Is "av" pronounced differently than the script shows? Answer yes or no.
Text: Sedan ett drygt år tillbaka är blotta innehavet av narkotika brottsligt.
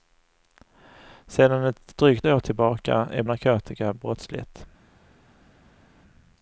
yes